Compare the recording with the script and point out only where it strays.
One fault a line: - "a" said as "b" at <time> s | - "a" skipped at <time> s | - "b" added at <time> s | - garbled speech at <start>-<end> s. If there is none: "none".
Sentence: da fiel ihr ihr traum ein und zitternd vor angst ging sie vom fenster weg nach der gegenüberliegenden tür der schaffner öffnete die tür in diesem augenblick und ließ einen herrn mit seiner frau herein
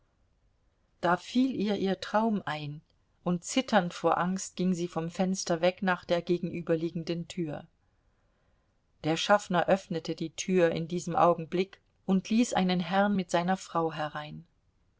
none